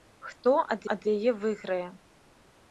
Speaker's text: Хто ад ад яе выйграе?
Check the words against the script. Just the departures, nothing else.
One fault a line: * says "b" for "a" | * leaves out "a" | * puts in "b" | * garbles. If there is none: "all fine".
all fine